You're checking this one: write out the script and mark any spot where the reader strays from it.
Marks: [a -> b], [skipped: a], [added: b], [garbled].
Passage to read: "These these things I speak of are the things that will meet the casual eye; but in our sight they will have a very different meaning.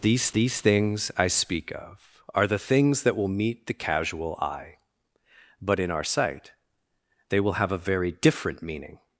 "These these things I speak of are the things that will meet the casual eye; but in our sight they will have a very different meaning.